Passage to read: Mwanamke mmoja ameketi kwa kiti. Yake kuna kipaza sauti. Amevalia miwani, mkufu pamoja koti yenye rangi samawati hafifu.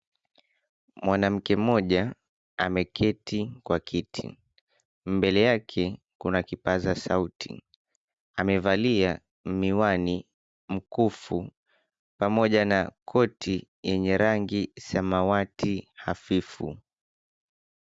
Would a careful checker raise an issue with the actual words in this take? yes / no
yes